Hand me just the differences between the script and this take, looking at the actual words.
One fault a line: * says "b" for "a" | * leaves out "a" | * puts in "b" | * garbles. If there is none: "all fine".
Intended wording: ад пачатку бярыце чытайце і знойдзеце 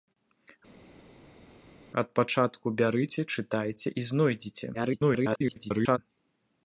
* garbles